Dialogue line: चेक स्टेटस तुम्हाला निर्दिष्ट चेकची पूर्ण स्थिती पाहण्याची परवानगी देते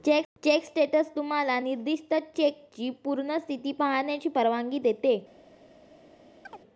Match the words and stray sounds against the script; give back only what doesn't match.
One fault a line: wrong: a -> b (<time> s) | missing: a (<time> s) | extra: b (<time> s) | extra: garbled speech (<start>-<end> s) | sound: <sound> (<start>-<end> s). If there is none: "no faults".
sound: chirp (6.4-6.6 s)